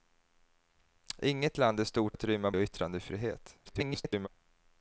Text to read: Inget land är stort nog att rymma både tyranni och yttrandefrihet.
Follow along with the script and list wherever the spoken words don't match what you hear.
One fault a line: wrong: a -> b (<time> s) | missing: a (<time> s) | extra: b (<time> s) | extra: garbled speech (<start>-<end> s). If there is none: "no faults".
missing: nog (2.2 s)
missing: både tyranni (2.5 s)
extra: garbled speech (3.6-4.3 s)